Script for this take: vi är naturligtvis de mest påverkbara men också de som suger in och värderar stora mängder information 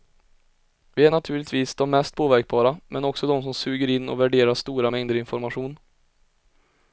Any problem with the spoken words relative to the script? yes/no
no